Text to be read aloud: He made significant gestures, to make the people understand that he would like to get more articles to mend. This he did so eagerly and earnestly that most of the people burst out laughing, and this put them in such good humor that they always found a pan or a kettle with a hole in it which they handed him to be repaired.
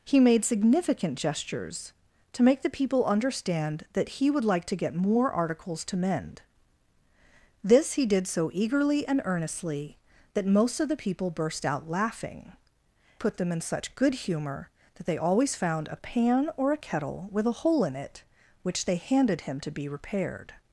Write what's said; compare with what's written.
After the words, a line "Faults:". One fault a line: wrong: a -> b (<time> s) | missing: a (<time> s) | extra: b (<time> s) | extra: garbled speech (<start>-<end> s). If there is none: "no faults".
He made significant gestures, to make the people understand that he would like to get more articles to mend. This he did so eagerly and earnestly that most of the people burst out laughing, put them in such good humor that they always found a pan or a kettle with a hole in it which they handed him to be repaired.
Faults:
missing: and this (12.5 s)